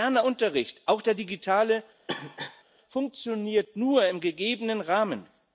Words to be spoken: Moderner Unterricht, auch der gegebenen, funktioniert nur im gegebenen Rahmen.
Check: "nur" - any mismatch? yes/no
no